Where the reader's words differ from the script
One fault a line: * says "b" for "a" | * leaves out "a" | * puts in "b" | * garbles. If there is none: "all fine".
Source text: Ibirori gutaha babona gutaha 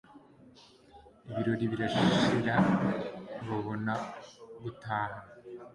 * says "birashira" for "gutaha"